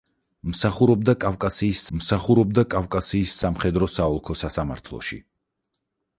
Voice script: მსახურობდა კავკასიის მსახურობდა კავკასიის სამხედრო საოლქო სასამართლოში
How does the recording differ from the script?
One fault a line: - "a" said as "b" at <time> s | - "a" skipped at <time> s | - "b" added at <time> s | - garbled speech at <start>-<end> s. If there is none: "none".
none